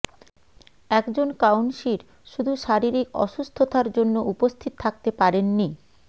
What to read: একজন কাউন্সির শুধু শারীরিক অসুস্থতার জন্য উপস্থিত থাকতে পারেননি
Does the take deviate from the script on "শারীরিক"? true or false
false